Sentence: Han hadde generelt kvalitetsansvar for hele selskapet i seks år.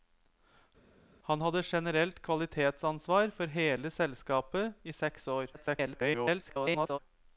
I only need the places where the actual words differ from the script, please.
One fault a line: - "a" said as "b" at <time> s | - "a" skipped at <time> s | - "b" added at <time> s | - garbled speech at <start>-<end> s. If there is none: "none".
- garbled speech at 5.5-7.0 s